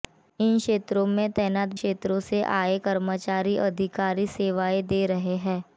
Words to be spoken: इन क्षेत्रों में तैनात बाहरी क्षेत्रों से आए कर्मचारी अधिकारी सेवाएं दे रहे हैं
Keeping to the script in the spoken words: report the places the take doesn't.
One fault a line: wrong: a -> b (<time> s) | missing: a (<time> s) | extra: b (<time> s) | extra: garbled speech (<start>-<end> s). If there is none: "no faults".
missing: बाहरी (1.7 s)